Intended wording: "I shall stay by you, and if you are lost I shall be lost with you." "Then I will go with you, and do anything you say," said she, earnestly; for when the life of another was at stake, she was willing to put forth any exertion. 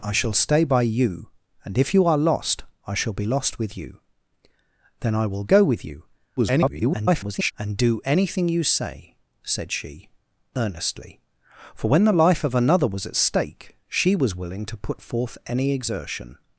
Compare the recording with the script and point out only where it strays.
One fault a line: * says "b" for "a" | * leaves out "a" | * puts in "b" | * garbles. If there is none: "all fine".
* garbles